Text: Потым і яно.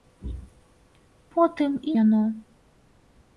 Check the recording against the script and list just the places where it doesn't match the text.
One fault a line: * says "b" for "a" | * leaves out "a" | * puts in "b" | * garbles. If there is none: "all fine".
all fine